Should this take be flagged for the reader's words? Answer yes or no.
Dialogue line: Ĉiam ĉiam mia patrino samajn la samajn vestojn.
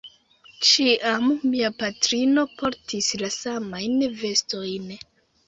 yes